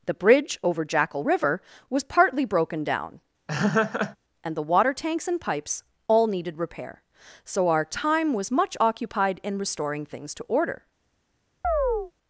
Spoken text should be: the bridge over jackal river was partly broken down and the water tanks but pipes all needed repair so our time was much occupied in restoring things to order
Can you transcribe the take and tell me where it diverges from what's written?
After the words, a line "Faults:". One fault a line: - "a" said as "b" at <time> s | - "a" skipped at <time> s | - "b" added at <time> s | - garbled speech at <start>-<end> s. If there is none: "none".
the bridge over jackal river was partly broken down and the water tanks and pipes all needed repair so our time was much occupied in restoring things to order
Faults:
- "but" said as "and" at 5.3 s